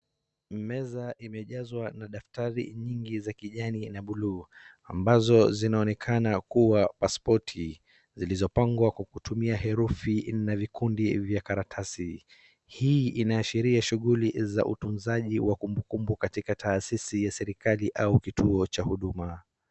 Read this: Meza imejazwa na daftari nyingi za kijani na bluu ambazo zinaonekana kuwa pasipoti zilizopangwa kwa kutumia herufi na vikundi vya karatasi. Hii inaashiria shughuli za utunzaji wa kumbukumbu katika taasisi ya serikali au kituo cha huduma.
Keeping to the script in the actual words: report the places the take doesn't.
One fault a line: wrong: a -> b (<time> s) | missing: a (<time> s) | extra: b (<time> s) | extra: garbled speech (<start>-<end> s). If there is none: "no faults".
no faults